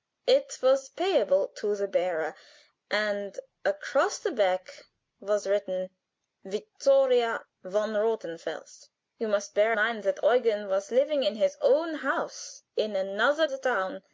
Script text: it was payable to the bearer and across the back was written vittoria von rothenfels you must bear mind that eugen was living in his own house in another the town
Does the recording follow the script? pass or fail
pass